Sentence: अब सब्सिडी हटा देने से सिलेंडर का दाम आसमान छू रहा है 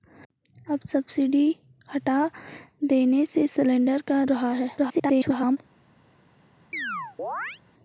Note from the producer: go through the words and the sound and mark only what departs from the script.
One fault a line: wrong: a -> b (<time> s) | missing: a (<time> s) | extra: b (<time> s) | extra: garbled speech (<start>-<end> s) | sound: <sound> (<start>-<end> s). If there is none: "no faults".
missing: दाम आसमान छू (4.2 s)
extra: garbled speech (4.8-5.6 s)
sound: chirp (6.7-7.6 s)